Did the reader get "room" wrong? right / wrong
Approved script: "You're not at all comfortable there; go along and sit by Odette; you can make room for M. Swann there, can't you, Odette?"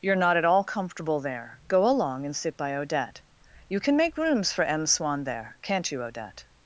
wrong